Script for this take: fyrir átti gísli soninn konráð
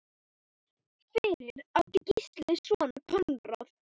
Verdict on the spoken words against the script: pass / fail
pass